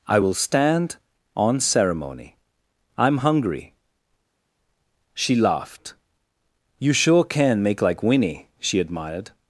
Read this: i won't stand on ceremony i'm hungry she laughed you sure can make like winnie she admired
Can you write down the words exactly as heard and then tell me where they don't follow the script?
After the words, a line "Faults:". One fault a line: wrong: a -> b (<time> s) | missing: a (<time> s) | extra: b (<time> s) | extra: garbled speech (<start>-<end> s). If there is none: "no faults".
i will stand on ceremony i'm hungry she laughed you sure can make like winnie she admired
Faults:
wrong: won't -> will (0.2 s)